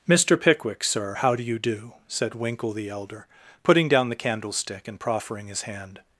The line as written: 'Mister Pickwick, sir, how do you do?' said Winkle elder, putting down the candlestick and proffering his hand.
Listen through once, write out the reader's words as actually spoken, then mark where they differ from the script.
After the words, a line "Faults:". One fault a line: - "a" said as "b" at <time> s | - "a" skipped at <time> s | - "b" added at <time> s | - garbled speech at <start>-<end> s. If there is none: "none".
'Mister Pickwick, sir, how do you do?' said Winkle the elder, putting down the candlestick and proffering his hand.
Faults:
- "the" added at 2.7 s